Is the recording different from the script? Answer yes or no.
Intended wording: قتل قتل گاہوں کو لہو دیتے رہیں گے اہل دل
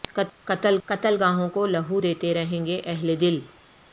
no